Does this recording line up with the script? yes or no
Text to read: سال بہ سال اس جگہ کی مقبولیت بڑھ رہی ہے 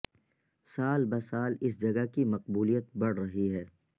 yes